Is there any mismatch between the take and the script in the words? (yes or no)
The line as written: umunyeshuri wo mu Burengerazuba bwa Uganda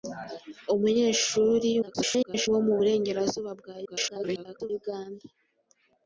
yes